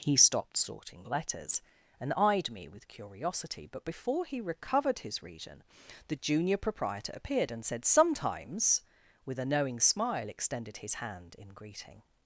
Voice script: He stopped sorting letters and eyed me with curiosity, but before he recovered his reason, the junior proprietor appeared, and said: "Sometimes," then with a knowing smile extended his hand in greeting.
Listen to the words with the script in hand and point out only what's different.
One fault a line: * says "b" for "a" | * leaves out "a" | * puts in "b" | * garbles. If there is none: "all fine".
* leaves out "then"